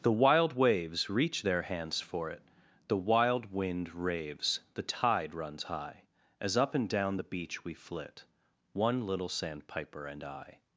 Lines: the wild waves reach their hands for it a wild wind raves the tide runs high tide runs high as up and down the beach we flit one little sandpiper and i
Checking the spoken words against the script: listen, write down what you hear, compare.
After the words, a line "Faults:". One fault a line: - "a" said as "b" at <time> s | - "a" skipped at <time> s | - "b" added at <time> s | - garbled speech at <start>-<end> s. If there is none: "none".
the wild waves reach their hands for it the wild wind raves the tide runs high as up and down the beach we flit one little sandpiper and i
Faults:
- "a" said as "the" at 2.9 s
- "tide runs high" skipped at 6.0 s